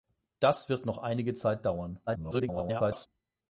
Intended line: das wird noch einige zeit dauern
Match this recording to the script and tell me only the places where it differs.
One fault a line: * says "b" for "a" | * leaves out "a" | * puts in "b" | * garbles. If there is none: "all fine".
* garbles